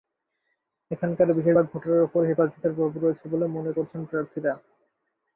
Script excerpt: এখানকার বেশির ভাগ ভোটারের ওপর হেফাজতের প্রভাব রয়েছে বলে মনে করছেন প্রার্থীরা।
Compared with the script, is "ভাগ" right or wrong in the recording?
right